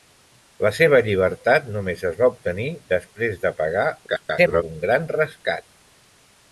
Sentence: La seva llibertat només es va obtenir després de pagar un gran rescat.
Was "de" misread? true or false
false